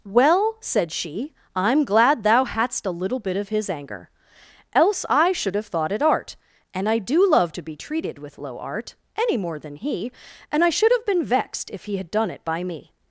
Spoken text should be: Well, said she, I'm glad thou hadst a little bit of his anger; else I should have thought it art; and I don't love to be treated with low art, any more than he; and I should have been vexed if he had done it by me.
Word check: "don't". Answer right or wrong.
wrong